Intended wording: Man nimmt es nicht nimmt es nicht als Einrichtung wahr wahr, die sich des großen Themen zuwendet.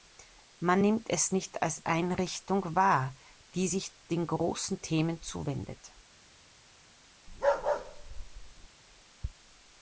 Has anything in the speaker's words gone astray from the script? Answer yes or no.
yes